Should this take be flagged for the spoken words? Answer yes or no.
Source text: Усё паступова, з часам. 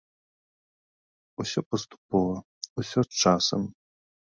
yes